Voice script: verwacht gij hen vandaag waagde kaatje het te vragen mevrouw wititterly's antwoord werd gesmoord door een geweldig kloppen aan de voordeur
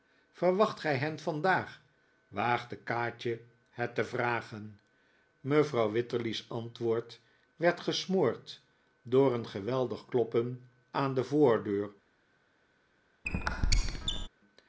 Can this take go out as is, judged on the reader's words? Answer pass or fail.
pass